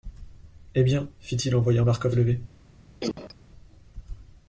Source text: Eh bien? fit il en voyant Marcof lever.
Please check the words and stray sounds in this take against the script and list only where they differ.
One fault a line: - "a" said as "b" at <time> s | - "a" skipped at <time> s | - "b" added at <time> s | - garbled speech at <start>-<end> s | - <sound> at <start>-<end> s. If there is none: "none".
- cough at 3.0-3.4 s